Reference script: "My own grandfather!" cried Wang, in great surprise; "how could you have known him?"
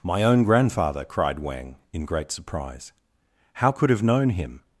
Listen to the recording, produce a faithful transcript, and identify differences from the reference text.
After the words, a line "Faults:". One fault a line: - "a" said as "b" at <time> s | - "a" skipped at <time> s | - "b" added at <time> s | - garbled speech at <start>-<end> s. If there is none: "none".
"My own grandfather!" cried Wang, in great surprise; "how could have known him?"
Faults:
- "you" skipped at 3.9 s